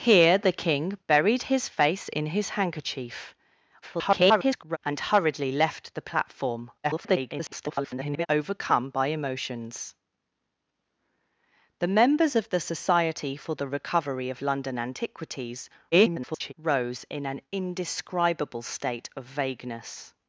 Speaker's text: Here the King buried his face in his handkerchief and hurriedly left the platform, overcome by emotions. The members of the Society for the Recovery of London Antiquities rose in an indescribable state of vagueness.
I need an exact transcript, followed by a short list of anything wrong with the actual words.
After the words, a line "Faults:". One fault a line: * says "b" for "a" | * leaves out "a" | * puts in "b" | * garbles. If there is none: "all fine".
Here the King buried his face in his handkerchief [garbled] and hurriedly left the platform, [garbled] overcome by emotions. The members of the Society for the Recovery of London Antiquities [garbled] rose in an indescribable state of vagueness.
Faults:
* garbles
* garbles
* garbles